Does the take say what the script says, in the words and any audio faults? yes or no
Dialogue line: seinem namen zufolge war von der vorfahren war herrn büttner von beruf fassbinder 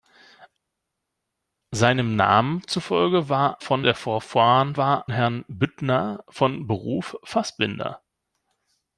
yes